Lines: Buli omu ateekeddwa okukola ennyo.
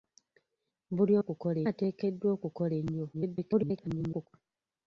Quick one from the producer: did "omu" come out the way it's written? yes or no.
no